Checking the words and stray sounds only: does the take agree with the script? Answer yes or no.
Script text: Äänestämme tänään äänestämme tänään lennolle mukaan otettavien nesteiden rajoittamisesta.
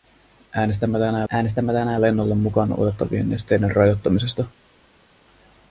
yes